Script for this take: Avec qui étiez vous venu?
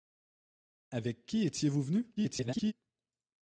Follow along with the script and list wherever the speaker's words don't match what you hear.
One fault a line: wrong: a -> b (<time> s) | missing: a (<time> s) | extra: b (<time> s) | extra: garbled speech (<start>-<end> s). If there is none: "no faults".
extra: garbled speech (2.2-2.7 s)